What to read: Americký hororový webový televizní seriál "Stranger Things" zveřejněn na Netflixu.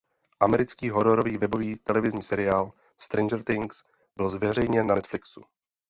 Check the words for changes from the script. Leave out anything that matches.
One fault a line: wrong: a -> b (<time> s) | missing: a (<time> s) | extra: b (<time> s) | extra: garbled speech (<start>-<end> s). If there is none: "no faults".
extra: byl (4.2 s)